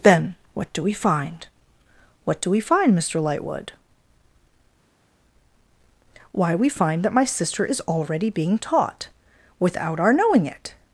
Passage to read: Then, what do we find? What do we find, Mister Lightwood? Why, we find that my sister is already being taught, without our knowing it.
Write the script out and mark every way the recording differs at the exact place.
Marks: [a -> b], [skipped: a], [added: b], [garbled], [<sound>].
Then, what do we find? What do we find, Mister Lightwood? Why, we find that my sister is already being taught, without our knowing it.